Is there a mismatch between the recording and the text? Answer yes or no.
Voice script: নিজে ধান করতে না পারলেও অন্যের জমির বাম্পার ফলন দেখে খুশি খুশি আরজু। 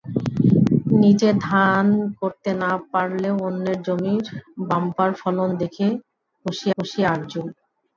no